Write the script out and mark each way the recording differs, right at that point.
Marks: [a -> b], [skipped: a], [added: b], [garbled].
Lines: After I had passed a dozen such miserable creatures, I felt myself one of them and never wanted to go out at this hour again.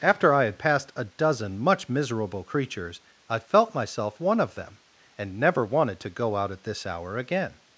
After I had passed a dozen [such -> much] miserable creatures, I felt myself one of them and never wanted to go out at this hour again.